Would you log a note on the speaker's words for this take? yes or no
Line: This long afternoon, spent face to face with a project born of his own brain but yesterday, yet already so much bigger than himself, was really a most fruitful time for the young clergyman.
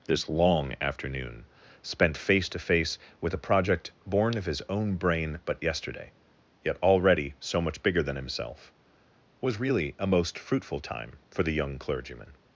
no